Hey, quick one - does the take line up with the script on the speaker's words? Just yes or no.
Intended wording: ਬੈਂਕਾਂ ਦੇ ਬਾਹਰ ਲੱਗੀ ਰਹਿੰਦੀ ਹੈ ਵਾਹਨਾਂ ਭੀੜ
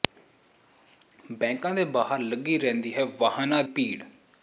yes